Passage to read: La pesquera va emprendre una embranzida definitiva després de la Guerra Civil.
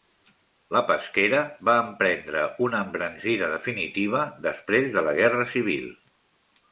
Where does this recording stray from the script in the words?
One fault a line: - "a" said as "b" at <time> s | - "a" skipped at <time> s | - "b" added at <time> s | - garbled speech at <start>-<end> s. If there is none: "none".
none